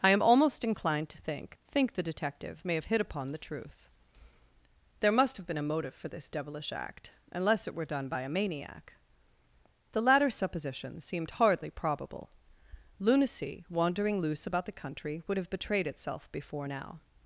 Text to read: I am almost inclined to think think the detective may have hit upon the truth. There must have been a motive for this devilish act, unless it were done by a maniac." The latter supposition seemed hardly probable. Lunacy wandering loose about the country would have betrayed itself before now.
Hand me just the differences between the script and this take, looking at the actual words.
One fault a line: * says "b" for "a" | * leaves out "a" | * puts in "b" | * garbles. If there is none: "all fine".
all fine